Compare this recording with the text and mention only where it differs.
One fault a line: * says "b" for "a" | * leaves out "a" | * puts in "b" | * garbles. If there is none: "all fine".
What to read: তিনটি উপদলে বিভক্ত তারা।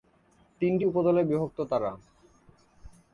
all fine